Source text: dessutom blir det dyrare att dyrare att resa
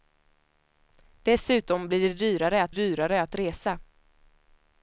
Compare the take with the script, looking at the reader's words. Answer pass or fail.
pass